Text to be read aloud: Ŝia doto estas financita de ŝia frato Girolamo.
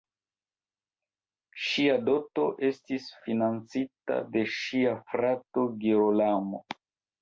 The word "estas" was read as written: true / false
false